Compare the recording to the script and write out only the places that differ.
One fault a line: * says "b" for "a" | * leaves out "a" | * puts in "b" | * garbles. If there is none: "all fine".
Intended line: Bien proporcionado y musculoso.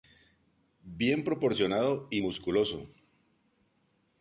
all fine